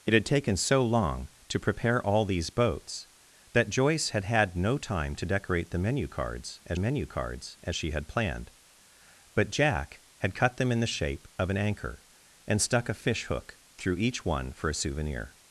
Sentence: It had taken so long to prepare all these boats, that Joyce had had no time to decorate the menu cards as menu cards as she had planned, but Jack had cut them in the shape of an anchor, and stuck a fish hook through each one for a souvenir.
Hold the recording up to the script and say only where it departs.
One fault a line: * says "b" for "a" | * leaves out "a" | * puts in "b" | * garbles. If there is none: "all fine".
all fine